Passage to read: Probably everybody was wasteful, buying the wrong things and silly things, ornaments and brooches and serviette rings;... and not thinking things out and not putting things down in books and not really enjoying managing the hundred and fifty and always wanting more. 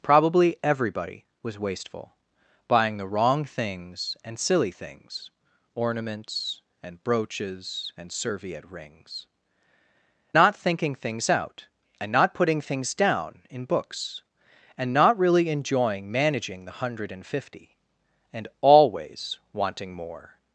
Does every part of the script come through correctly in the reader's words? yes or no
no